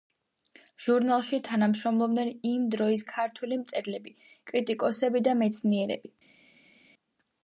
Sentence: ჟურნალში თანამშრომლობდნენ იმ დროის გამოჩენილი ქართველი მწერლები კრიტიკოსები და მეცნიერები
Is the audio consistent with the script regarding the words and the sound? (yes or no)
no